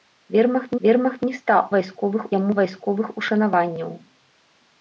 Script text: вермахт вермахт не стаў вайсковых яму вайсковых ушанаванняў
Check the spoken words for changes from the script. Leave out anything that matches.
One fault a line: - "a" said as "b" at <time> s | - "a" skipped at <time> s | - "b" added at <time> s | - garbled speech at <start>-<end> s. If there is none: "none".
none